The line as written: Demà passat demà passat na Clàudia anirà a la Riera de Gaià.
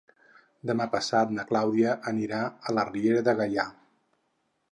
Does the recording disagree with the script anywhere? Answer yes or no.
yes